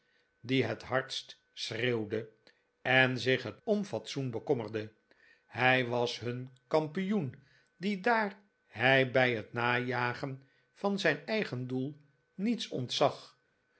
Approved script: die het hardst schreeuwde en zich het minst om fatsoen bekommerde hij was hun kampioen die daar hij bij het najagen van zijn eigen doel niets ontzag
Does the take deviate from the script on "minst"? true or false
true